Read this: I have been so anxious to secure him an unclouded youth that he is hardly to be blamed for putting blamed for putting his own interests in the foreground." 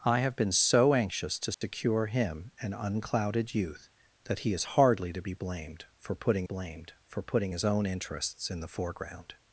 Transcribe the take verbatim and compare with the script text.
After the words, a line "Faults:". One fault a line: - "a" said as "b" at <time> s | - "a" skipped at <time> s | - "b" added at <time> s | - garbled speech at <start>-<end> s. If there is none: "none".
I have been so anxious to secure him an unclouded youth that he is hardly to be blamed for putting blamed for putting his own interests in the foreground."
Faults:
none